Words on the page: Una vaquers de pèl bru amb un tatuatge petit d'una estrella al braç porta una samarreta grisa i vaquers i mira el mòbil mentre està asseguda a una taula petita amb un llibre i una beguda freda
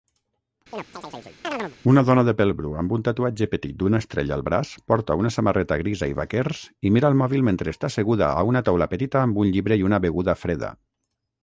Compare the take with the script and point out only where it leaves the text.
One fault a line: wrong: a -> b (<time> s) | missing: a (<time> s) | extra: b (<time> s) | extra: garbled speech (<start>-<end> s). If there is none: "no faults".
wrong: vaquers -> dona (2.1 s)